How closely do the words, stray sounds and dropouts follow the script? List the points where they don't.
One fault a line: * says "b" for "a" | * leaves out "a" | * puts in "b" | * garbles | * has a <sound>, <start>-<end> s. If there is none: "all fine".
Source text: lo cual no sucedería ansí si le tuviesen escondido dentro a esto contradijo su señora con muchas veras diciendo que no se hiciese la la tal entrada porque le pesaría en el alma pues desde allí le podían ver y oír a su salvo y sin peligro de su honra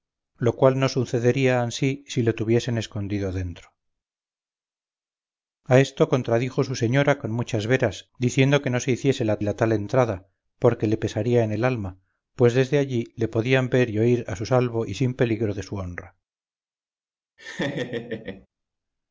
* has a laugh, 17.4-18.5 s